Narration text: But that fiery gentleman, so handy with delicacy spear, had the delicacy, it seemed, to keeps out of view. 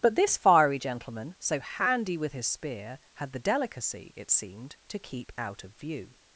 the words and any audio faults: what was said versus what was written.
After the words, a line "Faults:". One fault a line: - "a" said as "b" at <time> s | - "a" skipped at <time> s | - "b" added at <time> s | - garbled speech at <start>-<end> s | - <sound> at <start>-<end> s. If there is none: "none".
But this fiery gentleman, so handy with his spear, had the delicacy, it seemed, to keep out of view.
Faults:
- "that" said as "this" at 0.1 s
- "delicacy" said as "his" at 2.3 s
- "keeps" said as "keep" at 5.0 s